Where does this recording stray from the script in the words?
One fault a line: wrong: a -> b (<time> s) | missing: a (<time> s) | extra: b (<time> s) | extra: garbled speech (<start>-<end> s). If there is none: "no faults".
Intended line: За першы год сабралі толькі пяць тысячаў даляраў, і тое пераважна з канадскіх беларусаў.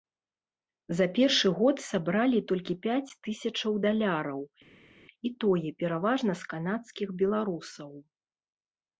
no faults